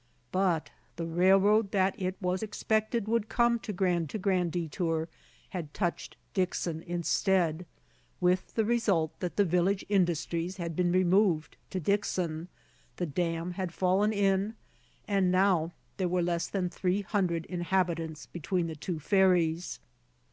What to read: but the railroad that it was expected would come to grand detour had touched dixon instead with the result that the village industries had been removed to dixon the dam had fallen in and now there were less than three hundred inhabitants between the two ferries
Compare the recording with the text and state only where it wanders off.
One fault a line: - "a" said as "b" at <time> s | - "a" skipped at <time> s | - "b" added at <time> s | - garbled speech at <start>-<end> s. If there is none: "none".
- "to grand" added at 4.0 s